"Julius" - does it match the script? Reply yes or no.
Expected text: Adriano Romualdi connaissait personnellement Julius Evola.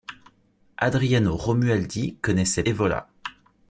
no